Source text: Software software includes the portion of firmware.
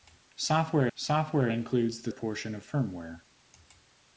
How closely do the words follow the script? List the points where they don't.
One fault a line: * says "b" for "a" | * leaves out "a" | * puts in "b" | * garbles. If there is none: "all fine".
all fine